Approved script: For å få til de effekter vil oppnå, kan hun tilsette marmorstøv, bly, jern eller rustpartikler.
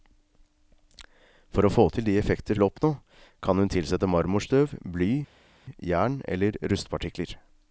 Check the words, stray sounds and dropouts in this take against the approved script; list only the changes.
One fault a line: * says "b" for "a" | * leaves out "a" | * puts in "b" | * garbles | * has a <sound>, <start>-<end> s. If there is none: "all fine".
all fine